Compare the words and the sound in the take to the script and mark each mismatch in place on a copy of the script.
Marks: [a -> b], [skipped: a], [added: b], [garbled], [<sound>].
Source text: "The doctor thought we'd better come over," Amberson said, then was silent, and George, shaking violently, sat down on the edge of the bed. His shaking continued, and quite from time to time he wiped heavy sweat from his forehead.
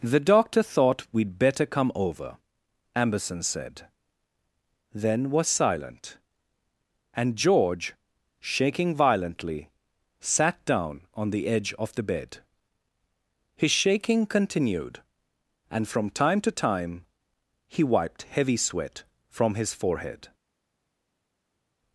"The doctor thought we'd better come over," Amberson said, then was silent, and George, shaking violently, sat down on the edge of the bed. His shaking continued, and [skipped: quite] from time to time he wiped heavy sweat from his forehead.